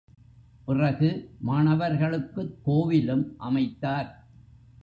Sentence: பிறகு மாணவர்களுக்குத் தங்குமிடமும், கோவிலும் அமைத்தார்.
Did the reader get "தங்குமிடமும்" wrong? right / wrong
wrong